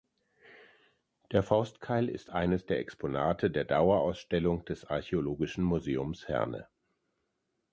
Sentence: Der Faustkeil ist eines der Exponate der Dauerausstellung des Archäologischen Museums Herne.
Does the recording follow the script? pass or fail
pass